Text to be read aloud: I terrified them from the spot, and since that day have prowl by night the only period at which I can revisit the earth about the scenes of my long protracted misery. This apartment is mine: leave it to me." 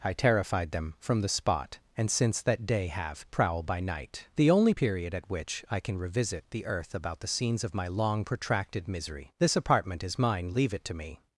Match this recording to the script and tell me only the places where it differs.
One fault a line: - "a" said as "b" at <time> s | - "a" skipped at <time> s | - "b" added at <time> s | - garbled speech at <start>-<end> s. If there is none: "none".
none